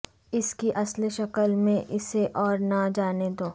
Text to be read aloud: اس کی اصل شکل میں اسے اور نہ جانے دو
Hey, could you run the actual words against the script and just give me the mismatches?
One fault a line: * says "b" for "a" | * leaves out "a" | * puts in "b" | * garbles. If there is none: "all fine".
all fine